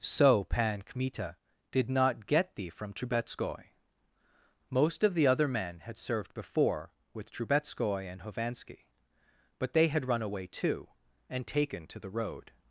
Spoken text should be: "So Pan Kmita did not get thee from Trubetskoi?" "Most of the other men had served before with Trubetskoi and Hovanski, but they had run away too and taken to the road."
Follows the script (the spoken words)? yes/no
yes